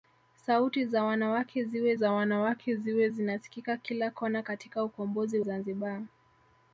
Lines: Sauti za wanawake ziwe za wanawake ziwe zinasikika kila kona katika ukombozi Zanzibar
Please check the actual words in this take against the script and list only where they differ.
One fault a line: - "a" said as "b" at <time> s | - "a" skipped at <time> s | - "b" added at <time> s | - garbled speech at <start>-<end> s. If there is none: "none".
none